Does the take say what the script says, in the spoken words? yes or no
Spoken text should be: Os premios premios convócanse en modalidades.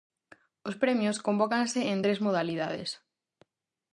no